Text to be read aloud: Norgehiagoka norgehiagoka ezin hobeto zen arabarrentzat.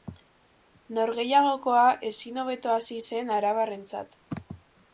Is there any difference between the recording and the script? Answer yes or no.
yes